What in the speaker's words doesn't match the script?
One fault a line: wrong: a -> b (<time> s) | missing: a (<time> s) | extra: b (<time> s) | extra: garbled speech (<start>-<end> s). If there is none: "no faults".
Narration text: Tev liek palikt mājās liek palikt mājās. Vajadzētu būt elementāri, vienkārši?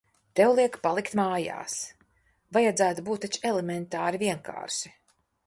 missing: liek palikt mājās (1.8 s)
extra: taču (3.3 s)